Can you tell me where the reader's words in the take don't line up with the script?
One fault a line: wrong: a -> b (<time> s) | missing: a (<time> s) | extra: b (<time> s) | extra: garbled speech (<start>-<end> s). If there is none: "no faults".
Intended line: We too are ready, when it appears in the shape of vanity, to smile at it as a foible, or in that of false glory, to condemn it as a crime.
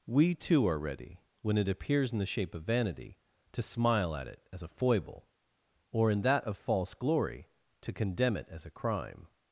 no faults